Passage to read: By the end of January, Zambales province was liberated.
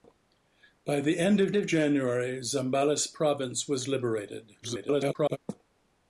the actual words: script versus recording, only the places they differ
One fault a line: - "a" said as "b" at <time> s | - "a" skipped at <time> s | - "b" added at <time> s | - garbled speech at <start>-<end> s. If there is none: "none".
- "of" added at 1.5 s
- garbled speech at 4.6-5.4 s